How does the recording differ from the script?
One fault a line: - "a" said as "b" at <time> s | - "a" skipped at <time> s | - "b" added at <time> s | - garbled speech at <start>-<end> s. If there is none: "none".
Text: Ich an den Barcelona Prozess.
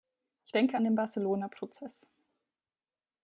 - "denke" added at 0.5 s